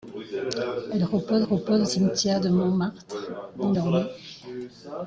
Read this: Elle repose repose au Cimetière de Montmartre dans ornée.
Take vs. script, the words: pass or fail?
pass